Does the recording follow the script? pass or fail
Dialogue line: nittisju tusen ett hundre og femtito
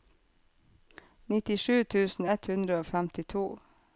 pass